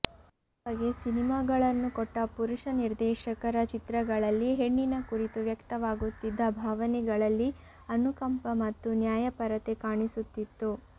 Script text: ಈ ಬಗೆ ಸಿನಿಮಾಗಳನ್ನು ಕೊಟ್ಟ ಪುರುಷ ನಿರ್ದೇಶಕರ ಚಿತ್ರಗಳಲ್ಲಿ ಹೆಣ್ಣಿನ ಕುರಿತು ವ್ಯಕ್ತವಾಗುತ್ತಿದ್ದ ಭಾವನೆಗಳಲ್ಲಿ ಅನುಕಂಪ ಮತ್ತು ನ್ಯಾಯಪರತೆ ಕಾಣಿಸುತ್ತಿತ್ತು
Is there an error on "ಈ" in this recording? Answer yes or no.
no